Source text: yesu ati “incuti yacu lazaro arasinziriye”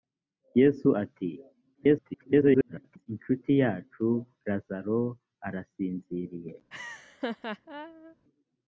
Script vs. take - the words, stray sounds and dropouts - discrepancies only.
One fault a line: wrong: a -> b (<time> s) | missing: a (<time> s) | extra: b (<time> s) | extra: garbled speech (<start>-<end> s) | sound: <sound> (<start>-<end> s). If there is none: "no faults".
extra: garbled speech (1.7-3.1 s)
sound: laugh (6.7-8.2 s)